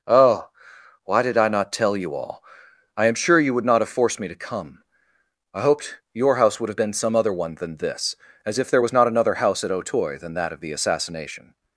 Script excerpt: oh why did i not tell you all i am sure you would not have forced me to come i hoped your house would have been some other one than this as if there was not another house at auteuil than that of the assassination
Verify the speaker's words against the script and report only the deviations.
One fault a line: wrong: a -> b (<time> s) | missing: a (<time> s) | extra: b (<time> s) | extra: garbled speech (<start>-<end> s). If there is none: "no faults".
no faults